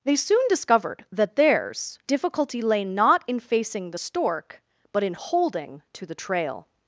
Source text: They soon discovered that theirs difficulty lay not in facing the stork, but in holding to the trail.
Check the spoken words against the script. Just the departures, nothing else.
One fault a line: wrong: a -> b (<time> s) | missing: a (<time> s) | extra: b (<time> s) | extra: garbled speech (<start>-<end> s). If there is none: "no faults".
no faults